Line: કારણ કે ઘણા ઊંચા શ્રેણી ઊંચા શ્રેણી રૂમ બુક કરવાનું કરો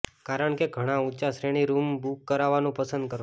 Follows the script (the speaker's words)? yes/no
no